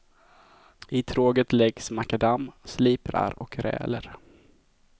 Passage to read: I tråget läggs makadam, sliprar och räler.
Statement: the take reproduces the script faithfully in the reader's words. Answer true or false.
true